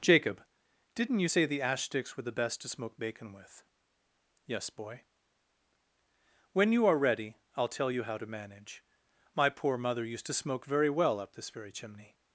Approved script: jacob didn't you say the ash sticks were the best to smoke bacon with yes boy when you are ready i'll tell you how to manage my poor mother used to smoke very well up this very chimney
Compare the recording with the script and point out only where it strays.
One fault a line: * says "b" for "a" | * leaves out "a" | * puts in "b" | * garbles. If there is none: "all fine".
all fine